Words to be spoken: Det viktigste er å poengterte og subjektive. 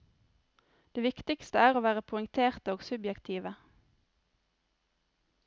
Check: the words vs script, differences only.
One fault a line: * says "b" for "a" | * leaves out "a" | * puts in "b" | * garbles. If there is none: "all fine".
* puts in "være"